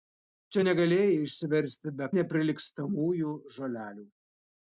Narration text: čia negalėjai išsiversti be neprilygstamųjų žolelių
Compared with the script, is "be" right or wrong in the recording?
right